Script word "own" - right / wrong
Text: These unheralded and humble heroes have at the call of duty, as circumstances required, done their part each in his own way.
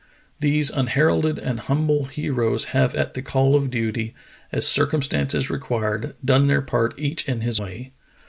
wrong